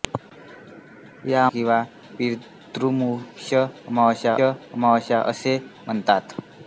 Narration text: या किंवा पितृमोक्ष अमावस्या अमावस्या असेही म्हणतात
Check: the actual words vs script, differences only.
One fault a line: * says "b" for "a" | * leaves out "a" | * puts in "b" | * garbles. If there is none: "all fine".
all fine